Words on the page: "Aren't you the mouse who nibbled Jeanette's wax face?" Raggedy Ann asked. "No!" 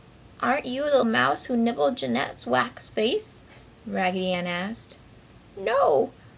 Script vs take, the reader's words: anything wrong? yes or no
no